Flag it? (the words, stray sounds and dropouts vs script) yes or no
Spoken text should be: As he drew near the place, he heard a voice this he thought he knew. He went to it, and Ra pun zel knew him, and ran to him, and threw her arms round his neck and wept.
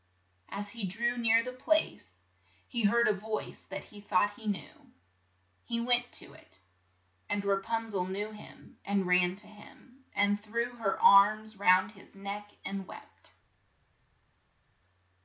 yes